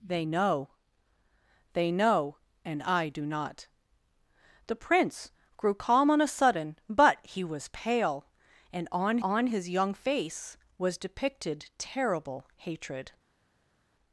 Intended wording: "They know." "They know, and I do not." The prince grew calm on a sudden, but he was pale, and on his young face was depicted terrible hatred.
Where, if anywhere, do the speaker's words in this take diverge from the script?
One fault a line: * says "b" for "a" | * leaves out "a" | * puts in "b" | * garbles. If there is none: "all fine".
* puts in "on"